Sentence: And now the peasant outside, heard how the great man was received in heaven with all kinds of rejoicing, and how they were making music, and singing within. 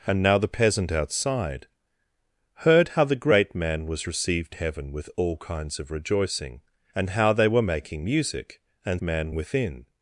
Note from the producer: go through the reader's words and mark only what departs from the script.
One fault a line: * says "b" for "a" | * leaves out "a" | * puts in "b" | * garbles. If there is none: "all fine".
* leaves out "in"
* says "man" for "singing"